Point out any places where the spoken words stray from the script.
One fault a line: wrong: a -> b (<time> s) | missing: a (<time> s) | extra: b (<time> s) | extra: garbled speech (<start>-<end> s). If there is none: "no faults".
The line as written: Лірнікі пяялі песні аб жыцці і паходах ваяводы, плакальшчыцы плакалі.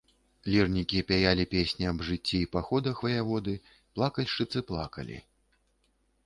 no faults